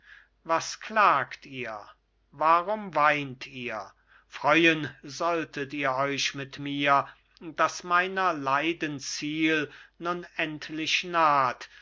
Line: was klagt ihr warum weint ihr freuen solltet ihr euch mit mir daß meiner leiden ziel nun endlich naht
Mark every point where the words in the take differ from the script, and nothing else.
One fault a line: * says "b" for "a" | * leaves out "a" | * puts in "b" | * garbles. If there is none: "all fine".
all fine